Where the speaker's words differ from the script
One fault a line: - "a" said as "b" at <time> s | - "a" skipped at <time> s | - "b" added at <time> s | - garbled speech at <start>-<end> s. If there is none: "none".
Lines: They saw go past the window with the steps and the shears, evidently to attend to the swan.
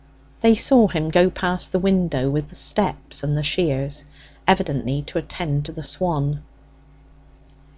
- "him" added at 0.9 s